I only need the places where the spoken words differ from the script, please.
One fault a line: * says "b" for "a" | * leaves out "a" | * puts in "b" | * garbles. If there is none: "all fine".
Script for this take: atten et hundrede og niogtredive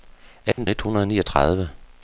all fine